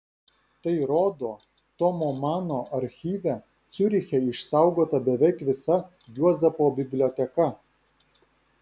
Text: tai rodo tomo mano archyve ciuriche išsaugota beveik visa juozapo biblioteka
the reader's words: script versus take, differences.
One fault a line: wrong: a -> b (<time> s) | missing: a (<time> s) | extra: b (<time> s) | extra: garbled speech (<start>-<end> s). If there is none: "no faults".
no faults